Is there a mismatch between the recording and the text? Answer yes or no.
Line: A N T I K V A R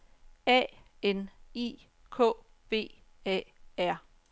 yes